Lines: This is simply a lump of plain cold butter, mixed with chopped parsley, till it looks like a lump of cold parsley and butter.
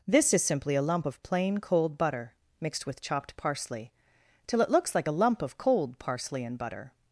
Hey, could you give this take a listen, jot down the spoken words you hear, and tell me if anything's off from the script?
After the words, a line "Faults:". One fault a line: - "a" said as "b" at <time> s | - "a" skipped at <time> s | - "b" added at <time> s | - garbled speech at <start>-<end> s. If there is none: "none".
This is simply a lump of plain cold butter, mixed with chopped parsley, till it looks like a lump of cold parsley and butter.
Faults:
none